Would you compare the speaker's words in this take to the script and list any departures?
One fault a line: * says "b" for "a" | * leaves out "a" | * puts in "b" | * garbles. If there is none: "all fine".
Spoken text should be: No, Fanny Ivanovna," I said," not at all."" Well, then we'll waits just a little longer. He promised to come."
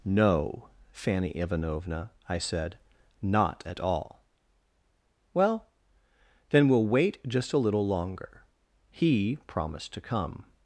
* says "wait" for "waits"